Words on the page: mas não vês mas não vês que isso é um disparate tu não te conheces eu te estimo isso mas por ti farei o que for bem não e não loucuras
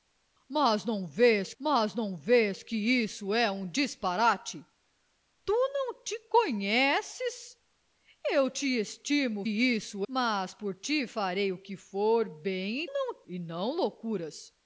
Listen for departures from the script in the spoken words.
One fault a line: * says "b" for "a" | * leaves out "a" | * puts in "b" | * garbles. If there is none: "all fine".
all fine